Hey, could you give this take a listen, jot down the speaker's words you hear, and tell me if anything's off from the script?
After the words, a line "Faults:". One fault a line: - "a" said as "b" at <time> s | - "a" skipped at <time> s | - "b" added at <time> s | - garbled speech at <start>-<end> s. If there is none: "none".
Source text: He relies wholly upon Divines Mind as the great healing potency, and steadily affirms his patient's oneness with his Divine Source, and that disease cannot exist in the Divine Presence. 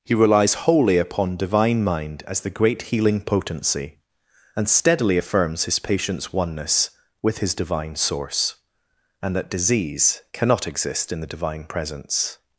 He relies wholly upon Divine Mind as the great healing potency, and steadily affirms his patient's oneness with his Divine Source, and that disease cannot exist in the Divine Presence.
Faults:
- "Divines" said as "Divine" at 1.4 s